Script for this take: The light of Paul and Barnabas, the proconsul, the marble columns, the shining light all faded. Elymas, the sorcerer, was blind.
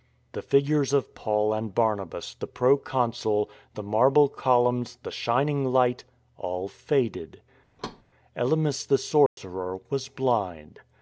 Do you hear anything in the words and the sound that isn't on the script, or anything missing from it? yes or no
yes